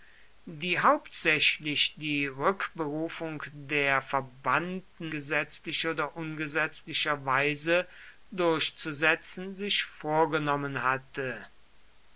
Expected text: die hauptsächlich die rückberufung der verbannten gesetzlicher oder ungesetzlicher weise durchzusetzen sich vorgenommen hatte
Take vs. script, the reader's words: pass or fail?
pass